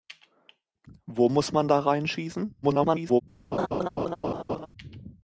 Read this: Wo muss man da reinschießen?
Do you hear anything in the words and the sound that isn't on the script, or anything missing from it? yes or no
yes